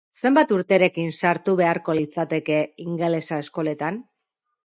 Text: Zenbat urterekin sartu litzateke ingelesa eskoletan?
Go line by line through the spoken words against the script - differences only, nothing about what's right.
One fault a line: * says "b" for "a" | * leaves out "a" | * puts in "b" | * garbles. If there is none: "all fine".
* puts in "beharko"